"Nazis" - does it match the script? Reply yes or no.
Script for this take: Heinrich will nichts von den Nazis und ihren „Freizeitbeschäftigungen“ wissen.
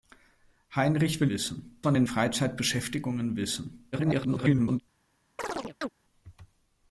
no